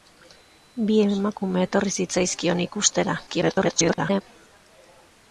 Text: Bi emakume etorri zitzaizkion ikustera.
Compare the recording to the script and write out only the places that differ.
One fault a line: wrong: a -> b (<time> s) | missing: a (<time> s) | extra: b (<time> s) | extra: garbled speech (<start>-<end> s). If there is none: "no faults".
extra: garbled speech (3.3-4.2 s)